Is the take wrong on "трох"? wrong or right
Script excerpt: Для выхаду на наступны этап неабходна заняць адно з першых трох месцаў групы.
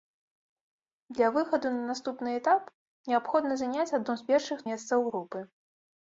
wrong